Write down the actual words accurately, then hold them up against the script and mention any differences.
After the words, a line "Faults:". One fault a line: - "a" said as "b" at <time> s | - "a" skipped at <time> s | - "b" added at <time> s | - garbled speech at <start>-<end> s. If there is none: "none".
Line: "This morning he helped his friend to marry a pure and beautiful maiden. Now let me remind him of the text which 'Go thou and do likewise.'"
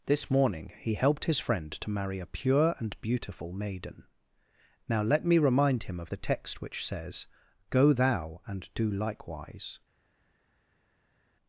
"This morning he helped his friend to marry a pure and beautiful maiden. Now let me remind him of the text which says, 'Go thou and do likewise.'"
Faults:
- "says" added at 6.9 s